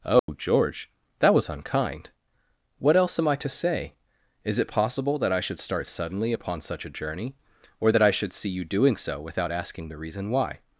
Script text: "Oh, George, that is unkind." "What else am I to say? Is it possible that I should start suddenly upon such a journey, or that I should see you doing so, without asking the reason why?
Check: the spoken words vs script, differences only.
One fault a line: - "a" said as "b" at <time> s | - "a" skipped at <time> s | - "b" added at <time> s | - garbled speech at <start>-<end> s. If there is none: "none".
- "is" said as "was" at 1.3 s